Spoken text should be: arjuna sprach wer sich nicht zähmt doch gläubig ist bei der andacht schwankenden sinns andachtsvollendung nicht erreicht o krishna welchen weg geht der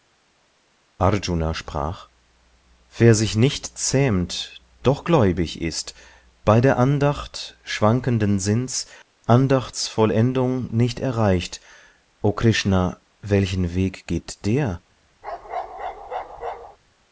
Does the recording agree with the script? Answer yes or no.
yes